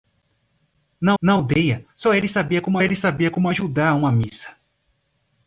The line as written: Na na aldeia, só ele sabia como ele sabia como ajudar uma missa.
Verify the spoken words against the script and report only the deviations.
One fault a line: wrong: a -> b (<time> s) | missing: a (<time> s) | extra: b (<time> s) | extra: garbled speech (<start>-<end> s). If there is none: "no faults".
no faults